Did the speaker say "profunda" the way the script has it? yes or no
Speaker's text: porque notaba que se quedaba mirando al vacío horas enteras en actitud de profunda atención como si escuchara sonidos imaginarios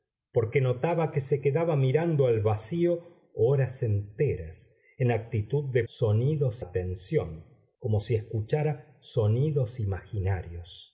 no